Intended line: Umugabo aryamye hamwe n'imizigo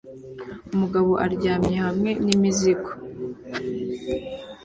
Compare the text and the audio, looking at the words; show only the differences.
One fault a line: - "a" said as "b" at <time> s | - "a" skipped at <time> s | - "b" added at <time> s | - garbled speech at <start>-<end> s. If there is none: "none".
none